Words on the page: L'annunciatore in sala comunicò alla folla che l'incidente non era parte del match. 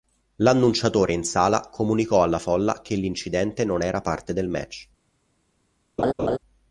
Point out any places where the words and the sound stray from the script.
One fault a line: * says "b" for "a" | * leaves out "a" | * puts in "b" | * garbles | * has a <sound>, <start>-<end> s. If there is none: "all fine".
* has a laugh, 6.0-6.4 s